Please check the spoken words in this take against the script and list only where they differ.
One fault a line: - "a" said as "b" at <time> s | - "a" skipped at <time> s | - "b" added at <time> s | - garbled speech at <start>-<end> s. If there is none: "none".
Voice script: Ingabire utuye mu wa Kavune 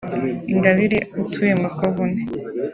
none